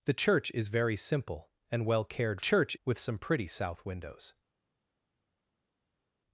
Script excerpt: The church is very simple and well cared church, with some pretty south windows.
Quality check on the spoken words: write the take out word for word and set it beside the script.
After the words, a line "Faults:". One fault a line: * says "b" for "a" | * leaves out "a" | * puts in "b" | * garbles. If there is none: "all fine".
The church is very simple and well cared church, with some pretty south windows.
Faults:
all fine